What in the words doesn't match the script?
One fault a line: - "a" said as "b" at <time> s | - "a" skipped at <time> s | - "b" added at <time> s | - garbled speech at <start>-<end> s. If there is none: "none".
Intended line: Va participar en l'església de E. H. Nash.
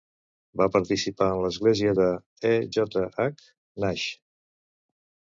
- "J" added at 2.8 s